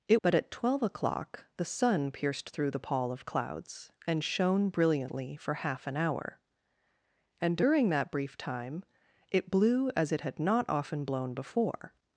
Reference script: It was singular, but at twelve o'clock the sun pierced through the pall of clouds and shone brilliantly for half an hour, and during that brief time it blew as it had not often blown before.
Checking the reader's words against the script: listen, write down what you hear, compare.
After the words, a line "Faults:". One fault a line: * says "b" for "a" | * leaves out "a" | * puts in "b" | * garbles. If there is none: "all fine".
It but at twelve o'clock the sun pierced through the pall of clouds and shone brilliantly for half an hour, and during that brief time it blew as it had not often blown before.
Faults:
* leaves out "was singular"